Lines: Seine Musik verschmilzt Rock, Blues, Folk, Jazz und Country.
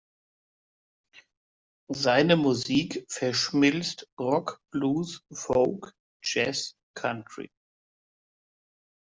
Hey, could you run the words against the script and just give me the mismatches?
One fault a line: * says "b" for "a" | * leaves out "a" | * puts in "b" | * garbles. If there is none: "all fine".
* leaves out "und"